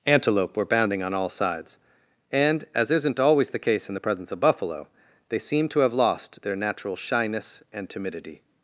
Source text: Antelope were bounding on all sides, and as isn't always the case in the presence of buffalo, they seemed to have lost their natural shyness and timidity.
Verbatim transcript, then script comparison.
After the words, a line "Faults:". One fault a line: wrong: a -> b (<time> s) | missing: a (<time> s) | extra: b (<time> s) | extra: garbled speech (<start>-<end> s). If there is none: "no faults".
Antelope were bounding on all sides, and as isn't always the case in the presence of buffalo, they seemed to have lost their natural shyness and timidity.
Faults:
no faults